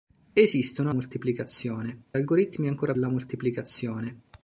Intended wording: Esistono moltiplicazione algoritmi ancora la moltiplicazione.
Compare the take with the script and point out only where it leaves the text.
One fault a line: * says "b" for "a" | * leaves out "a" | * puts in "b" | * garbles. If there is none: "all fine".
all fine